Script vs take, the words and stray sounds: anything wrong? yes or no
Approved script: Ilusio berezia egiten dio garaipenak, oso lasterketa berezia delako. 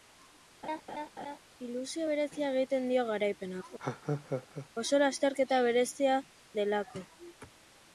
yes